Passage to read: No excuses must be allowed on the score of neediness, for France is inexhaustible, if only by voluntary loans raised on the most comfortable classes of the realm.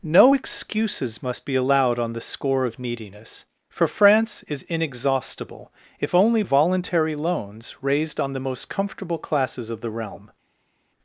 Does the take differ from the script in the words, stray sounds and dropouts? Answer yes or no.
yes